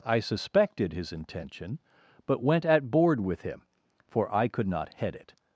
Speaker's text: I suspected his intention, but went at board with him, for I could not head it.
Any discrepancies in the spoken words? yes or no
no